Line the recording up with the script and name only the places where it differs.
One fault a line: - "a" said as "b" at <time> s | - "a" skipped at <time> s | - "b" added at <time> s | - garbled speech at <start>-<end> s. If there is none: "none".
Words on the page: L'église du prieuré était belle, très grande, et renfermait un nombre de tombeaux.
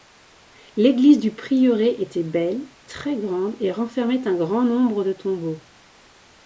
- "grand" added at 4.4 s